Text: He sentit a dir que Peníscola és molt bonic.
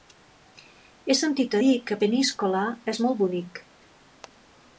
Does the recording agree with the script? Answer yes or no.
yes